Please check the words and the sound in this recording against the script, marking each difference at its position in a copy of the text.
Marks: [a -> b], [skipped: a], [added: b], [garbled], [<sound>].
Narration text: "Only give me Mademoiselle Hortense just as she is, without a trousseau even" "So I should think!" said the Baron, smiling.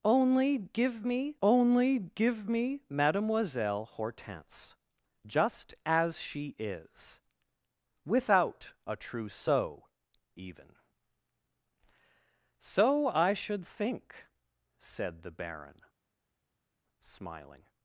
"Only give me [added: only give me] Mademoiselle Hortense just as she is, without a trousseau even" "So I should think!" said the Baron, smiling.